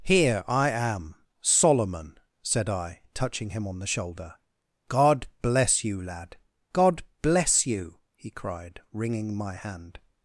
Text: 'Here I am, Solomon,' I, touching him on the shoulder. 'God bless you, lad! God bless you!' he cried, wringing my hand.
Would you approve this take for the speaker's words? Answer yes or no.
no